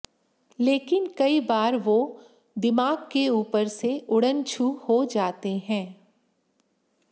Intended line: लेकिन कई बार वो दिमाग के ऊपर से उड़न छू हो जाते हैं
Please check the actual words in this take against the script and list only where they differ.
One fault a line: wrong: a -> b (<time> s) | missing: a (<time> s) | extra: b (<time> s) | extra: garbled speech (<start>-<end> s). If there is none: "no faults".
no faults